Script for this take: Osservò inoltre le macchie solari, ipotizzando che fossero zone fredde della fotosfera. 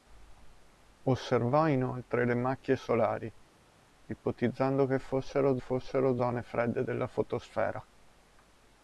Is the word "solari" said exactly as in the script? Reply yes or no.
yes